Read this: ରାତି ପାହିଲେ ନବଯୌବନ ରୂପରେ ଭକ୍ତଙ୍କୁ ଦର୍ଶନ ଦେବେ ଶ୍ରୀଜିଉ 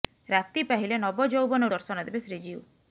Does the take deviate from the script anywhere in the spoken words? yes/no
yes